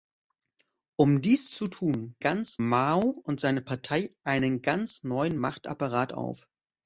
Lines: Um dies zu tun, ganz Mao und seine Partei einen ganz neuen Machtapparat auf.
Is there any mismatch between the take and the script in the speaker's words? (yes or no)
no